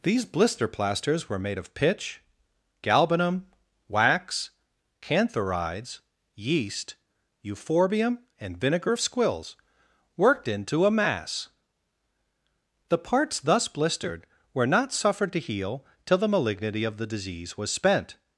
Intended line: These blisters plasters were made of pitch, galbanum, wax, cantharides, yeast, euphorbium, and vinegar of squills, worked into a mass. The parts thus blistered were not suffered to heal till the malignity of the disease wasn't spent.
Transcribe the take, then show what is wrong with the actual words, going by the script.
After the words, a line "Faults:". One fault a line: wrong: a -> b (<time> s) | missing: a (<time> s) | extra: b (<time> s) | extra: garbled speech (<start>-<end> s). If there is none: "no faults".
These blister plasters were made of pitch, galbanum, wax, cantharides, yeast, euphorbium, and vinegar of squills, worked into a mass. The parts thus blistered were not suffered to heal till the malignity of the disease was spent.
Faults:
wrong: blisters -> blister (0.2 s)
wrong: wasn't -> was (17.6 s)